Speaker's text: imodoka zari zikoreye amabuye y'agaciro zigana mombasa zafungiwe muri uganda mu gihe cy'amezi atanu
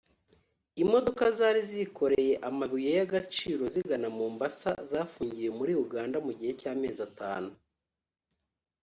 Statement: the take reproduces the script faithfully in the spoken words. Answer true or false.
true